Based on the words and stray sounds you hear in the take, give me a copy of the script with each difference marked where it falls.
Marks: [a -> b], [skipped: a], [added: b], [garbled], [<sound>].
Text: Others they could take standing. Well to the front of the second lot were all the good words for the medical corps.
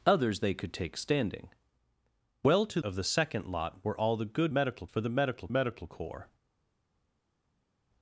Others they could take standing. Well to [skipped: the front] of the second lot were all the good [words -> medical] for the medical [added: medical] corps.